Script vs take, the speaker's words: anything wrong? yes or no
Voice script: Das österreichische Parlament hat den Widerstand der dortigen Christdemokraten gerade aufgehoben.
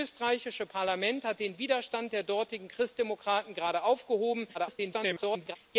yes